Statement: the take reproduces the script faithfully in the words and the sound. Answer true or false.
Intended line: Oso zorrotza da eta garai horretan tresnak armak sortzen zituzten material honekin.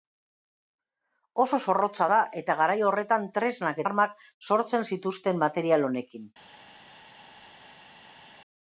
true